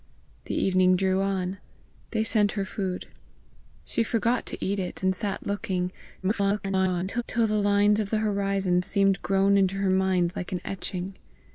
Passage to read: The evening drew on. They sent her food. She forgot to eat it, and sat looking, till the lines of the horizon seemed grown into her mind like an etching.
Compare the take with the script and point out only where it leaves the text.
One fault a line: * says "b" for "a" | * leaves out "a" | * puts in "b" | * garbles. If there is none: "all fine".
* garbles